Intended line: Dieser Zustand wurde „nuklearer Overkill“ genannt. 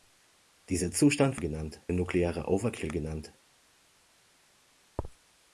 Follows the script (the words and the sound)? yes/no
no